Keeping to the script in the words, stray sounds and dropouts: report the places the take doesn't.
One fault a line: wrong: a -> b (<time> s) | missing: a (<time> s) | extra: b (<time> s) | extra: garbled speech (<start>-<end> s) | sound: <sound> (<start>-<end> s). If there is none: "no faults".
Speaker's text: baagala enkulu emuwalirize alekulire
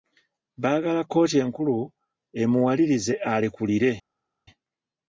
extra: kkooti (1.0 s)